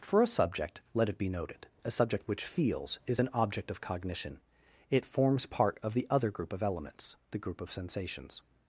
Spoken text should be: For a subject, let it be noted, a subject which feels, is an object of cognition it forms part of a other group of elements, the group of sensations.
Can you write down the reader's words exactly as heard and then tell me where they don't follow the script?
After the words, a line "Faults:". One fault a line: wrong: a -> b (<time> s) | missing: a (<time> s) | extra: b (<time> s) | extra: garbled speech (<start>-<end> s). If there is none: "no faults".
For a subject, let it be noted, a subject which feels, is an object of cognition it forms part of the other group of elements, the group of sensations.
Faults:
wrong: a -> the (5.9 s)